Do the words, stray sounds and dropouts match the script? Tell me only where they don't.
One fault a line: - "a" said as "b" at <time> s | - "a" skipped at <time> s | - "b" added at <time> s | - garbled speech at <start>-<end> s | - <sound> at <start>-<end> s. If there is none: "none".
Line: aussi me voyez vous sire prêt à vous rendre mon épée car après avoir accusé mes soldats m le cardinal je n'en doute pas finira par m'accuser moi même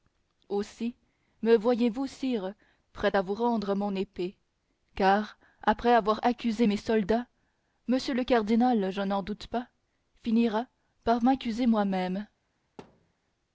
- thud at 12.8-13.1 s